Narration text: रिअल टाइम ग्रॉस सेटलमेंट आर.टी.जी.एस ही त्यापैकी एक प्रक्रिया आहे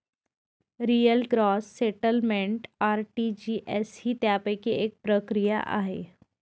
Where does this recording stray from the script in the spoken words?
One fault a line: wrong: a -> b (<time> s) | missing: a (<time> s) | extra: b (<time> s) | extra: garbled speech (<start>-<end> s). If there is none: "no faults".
missing: टाइम (1.2 s)